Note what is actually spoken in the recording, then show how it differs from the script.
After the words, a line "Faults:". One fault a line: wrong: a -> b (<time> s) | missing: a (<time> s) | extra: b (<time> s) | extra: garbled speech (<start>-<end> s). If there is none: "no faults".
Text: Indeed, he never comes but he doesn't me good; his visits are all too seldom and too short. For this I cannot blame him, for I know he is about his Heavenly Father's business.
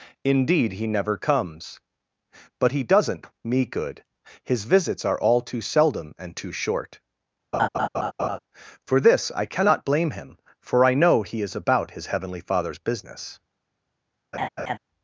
Indeed, he never comes but he doesn't me good; his visits are all too seldom and too short. For this I cannot blame him, for I know he is about his Heavenly Father's business.
Faults:
no faults